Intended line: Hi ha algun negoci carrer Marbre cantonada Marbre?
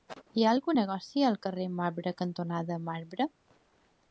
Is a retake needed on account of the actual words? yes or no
yes